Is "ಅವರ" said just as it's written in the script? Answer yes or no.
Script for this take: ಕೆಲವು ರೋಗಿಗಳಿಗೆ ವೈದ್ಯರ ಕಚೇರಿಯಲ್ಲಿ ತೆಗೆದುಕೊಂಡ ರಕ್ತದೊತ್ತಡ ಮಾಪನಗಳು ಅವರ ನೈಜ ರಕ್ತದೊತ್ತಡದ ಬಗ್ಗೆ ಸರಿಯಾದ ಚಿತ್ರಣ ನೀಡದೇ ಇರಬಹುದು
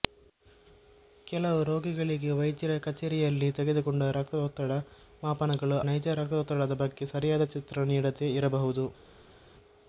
no